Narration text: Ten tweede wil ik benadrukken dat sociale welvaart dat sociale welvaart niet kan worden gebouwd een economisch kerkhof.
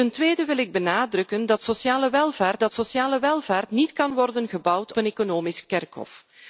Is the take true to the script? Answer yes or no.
yes